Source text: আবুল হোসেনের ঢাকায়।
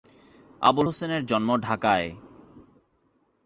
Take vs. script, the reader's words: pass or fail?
fail